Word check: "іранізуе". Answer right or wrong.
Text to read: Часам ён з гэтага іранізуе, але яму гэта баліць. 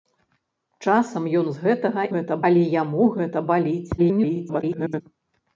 wrong